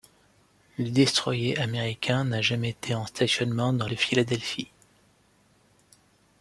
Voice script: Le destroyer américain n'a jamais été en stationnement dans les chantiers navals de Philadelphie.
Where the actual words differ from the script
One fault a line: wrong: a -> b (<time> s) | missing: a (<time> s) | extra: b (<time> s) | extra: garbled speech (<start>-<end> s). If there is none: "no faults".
missing: les chantiers navals (3.9 s)